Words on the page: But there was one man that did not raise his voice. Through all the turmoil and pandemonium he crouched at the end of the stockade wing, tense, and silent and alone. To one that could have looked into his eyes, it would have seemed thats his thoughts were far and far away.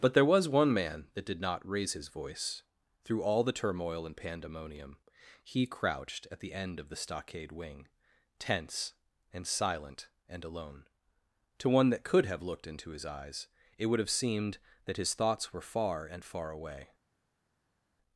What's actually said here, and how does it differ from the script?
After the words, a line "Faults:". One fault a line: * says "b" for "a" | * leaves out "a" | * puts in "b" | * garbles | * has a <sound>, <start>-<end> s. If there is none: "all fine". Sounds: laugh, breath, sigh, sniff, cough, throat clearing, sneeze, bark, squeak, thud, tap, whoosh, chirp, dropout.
But there was one man that did not raise his voice. Through all the turmoil and pandemonium he crouched at the end of the stockade wing, tense, and silent and alone. To one that could have looked into his eyes, it would have seemed that his thoughts were far and far away.
Faults:
* says "that" for "thats"